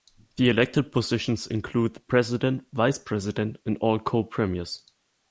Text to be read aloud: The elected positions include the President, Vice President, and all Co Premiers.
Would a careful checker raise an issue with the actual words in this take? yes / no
no